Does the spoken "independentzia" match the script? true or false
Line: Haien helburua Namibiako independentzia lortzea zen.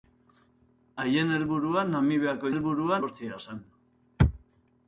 false